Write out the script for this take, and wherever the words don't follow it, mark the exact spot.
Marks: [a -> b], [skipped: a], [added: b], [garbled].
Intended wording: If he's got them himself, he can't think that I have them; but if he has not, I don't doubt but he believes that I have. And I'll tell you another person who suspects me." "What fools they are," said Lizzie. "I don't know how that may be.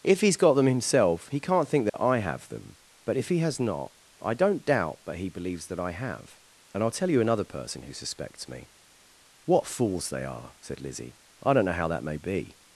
If he's got them himself, he can't think that I have them; but if he has not, I don't doubt but he believes that I have. And I'll tell you another person who suspects me." "What fools they are," said Lizzie. "I don't know how that may be.